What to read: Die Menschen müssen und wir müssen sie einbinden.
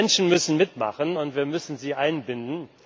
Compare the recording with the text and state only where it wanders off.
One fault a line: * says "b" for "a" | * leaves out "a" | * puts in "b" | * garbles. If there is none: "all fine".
* puts in "mitmachen"